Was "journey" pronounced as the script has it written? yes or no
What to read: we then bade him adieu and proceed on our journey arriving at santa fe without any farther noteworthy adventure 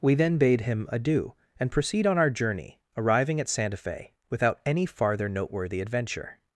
yes